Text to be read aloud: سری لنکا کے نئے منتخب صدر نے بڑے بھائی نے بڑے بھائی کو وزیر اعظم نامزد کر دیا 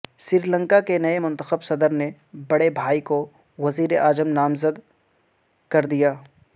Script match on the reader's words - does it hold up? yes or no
no